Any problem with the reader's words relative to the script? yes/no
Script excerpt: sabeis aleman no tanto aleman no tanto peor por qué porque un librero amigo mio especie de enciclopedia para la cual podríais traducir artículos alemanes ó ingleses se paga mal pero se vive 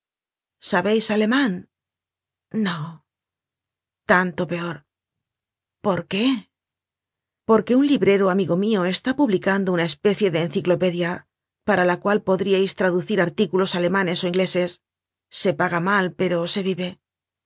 yes